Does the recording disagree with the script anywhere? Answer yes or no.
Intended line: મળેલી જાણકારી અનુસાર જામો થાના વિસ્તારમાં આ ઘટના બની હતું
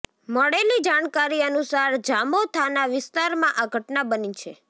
yes